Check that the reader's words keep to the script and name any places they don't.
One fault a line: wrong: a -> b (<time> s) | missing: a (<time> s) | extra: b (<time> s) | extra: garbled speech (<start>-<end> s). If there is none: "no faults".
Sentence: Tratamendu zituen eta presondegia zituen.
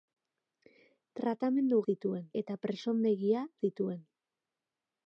no faults